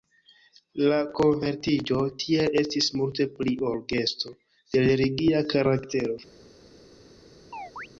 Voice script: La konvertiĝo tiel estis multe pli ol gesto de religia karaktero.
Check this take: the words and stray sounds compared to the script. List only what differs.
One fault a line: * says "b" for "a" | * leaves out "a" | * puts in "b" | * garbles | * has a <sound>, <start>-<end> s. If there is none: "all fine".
* has a chirp, 7.5-7.9 s